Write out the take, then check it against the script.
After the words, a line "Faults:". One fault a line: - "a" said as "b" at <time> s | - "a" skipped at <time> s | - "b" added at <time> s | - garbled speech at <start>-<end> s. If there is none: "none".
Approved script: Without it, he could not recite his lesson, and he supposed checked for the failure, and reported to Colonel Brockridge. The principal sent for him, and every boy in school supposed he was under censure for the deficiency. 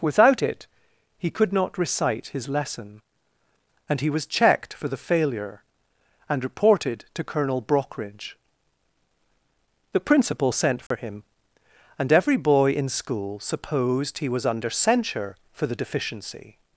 Without it, he could not recite his lesson, and he was checked for the failure, and reported to Colonel Brockridge. The principal sent for him, and every boy in school supposed he was under censure for the deficiency.
Faults:
- "supposed" said as "was" at 4.1 s